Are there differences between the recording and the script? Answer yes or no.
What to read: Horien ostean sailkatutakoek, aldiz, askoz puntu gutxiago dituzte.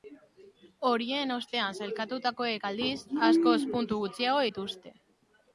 no